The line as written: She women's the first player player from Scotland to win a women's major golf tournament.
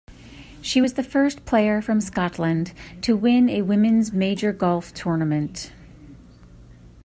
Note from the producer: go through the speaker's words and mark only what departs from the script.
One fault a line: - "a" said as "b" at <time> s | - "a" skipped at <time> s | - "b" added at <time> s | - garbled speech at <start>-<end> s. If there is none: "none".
- "women's" said as "was" at 0.8 s
- "player" skipped at 1.8 s